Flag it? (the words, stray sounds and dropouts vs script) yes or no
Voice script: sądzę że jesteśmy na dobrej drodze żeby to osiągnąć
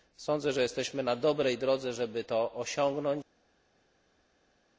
no